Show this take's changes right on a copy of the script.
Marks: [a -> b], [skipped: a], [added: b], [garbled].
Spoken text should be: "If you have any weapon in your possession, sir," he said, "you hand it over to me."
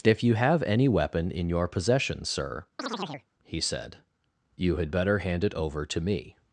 "If you have any weapon in your possession, sir," he said, "you [added: had better] hand it over to me."